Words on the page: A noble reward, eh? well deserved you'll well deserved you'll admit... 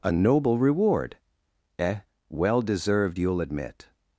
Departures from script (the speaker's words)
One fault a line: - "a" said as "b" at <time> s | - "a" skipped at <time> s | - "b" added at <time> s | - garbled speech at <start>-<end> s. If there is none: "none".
- "well deserved you'll" skipped at 3.4 s